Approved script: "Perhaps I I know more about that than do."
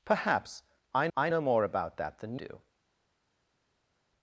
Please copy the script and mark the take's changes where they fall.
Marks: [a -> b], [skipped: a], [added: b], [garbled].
"Perhaps I I know more about that than do."